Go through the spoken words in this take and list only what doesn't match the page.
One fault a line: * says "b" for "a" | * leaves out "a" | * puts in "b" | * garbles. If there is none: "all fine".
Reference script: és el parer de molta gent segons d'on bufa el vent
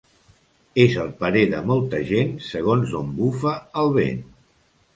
all fine